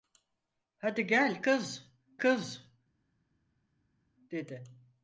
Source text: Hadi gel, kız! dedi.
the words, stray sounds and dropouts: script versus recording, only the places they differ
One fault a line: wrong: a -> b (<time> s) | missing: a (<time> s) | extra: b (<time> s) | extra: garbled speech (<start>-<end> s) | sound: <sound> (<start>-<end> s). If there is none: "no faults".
extra: kız (2.2 s)